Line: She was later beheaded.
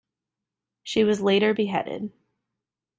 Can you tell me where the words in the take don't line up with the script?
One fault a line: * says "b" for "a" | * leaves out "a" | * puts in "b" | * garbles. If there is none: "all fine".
all fine